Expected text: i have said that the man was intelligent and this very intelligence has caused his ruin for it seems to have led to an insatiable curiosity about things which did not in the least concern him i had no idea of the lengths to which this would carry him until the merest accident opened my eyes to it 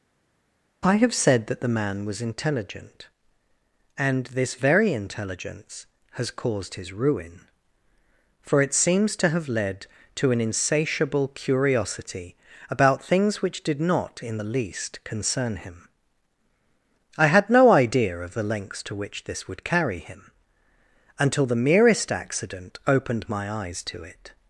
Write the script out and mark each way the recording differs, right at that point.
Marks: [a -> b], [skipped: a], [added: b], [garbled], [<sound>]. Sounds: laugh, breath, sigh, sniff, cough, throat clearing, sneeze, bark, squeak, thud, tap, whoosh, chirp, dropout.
i have said that the man was intelligent and this very intelligence has caused his ruin for it seems to have led to an insatiable curiosity about things which did not in the least concern him i had no idea of the lengths to which this would carry him until the merest accident opened my eyes to it